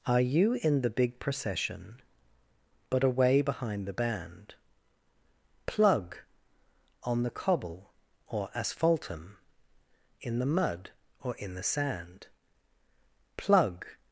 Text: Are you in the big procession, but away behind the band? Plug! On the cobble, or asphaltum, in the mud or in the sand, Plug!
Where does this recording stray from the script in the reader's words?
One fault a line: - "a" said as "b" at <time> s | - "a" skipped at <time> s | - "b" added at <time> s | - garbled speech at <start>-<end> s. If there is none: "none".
none